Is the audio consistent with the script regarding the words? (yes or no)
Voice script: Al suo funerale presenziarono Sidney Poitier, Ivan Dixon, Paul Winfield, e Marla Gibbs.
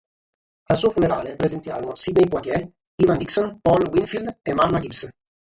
yes